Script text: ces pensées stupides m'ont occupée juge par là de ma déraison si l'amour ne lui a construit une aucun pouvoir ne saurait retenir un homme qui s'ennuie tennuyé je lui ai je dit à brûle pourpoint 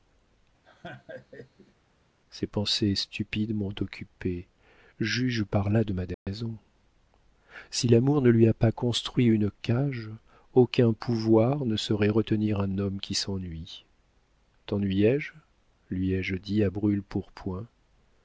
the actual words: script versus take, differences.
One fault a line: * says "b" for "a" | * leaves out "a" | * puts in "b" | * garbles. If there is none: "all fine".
* puts in "pas"
* puts in "cage"